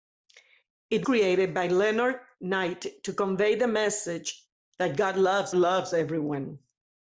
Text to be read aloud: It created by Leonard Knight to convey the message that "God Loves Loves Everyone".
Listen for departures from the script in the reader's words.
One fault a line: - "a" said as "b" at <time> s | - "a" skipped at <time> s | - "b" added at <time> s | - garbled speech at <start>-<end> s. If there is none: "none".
none